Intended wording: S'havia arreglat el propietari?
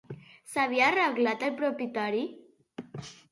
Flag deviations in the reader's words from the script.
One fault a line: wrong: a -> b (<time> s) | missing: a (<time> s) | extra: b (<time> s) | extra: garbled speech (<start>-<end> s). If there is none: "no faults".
no faults